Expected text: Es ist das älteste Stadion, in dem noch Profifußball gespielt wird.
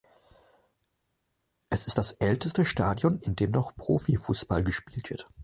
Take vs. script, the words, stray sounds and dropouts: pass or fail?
pass